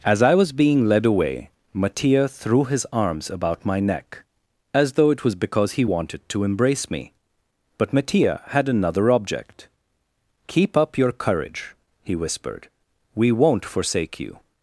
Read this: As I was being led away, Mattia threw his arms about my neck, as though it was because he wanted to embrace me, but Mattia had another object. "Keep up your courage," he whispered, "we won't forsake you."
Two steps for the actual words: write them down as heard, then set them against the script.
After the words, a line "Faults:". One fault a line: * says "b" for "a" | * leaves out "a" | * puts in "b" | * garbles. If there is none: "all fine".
As I was being led away, Mattia threw his arms about my neck, as though it was because he wanted to embrace me, but Mattia had another object. "Keep up your courage," he whispered, "we won't forsake you."
Faults:
all fine